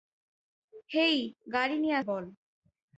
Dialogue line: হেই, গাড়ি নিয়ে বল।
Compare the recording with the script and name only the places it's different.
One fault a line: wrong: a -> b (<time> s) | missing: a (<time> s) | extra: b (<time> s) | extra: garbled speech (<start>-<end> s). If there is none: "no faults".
no faults